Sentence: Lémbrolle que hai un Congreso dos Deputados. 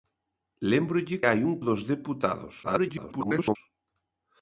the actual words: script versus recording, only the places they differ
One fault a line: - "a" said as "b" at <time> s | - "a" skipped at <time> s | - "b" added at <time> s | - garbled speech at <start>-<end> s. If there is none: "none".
- "que" skipped at 1.2 s
- "Congreso" skipped at 1.5 s
- garbled speech at 2.6-3.6 s